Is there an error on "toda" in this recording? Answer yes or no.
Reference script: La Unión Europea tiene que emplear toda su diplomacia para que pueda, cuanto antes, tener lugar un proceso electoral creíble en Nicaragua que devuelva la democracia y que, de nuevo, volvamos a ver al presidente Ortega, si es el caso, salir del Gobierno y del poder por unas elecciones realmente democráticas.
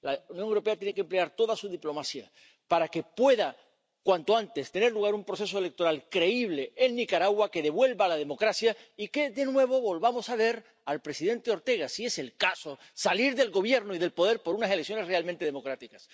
no